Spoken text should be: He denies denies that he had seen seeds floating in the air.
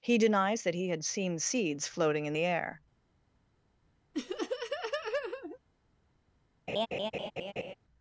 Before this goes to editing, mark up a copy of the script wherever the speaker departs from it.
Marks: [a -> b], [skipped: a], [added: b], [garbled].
He denies [skipped: denies] that he had seen seeds floating in the air.